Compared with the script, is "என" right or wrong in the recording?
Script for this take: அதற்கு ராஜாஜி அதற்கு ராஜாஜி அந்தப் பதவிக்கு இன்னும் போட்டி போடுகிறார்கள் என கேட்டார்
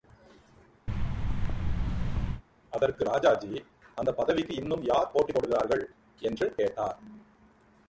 wrong